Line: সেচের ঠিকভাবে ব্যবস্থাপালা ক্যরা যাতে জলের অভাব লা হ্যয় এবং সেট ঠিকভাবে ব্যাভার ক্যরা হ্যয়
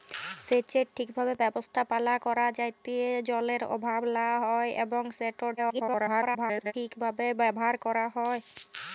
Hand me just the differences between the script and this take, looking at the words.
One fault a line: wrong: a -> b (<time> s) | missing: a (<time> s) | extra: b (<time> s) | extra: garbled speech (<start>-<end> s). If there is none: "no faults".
extra: garbled speech (5.6-6.7 s)